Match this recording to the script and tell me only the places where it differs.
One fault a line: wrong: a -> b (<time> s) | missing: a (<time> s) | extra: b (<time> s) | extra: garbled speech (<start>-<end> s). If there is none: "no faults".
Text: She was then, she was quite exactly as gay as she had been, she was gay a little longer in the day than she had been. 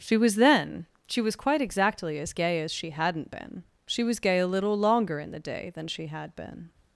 wrong: had -> hadn't (2.9 s)